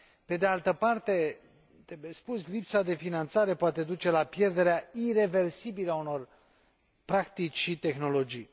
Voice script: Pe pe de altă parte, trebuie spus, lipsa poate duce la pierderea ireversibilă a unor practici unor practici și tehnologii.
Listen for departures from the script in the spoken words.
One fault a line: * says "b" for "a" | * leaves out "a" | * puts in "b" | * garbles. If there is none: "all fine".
* leaves out "pe"
* puts in "de finanțare"
* leaves out "unor practici"